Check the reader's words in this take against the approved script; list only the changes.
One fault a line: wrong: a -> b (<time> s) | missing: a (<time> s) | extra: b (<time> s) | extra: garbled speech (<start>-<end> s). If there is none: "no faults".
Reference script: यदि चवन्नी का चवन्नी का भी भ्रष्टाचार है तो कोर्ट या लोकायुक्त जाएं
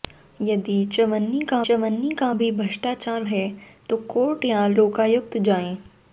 no faults